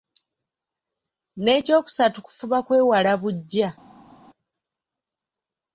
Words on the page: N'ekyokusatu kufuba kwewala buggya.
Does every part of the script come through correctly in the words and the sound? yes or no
yes